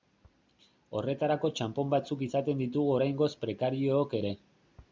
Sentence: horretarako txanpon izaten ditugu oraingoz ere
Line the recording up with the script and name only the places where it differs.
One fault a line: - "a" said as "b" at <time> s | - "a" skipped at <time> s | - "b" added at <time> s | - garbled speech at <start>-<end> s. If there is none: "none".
- "batzuk" added at 1.9 s
- "prekariook" added at 3.5 s